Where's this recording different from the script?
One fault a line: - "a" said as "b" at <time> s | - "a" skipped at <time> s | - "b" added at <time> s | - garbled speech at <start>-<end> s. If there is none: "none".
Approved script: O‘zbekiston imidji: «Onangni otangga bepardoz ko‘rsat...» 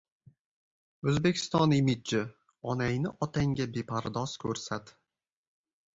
none